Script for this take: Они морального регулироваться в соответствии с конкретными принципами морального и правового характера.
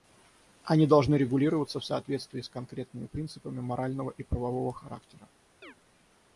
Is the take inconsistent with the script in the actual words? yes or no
yes